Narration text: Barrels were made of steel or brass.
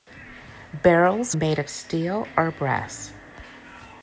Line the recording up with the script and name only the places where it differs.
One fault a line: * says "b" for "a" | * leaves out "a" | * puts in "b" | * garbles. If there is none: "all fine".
* leaves out "were"